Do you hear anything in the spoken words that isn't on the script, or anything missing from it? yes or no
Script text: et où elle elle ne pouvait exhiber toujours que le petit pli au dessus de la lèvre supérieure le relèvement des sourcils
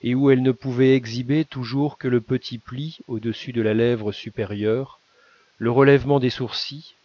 yes